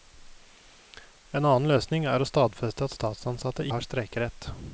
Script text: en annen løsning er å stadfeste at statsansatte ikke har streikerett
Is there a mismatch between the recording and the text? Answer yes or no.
yes